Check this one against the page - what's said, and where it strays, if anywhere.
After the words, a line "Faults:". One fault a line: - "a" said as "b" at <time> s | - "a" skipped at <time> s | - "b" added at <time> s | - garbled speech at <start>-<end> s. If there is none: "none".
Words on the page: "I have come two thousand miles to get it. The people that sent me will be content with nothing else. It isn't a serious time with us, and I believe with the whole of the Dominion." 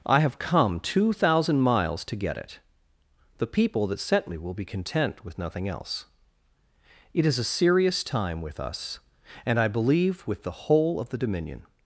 "I have come two thousand miles to get it. The people that sent me will be content with nothing else. It is a serious time with us, and I believe with the whole of the Dominion."
Faults:
- "isn't" said as "is" at 7.2 s